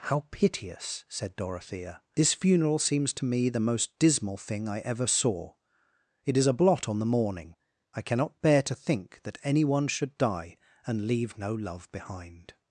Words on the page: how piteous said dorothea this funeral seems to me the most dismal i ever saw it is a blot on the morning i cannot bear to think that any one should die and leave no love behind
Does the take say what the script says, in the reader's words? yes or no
no